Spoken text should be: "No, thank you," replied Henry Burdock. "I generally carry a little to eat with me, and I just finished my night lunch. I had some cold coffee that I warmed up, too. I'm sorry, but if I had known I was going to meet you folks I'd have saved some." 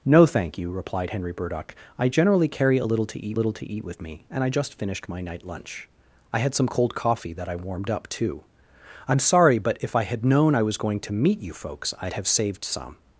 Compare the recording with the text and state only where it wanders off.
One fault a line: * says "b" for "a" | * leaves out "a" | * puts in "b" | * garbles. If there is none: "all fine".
* puts in "little to eat"